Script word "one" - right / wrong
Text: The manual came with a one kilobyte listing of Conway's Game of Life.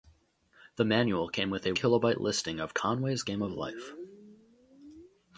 wrong